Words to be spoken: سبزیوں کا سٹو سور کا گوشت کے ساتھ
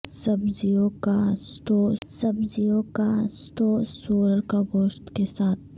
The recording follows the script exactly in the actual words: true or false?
false